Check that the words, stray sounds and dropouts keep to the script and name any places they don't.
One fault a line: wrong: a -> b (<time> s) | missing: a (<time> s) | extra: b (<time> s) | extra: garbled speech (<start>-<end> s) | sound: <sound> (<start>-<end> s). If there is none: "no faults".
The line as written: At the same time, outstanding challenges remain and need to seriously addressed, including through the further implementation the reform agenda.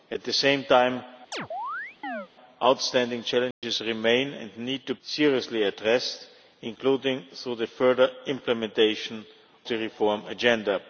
sound: chirp (1.3-2.3 s)
sound: dropout (3.5-3.6 s)